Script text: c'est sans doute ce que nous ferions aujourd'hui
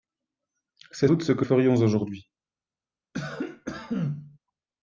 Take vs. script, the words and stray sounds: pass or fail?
fail